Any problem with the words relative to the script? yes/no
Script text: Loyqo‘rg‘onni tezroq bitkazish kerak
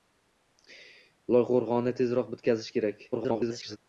yes